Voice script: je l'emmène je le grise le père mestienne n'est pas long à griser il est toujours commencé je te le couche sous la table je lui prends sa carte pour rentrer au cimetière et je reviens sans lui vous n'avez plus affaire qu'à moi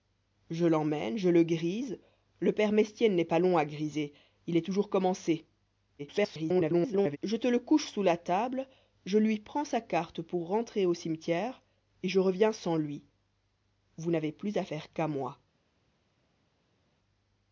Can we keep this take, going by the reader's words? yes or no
no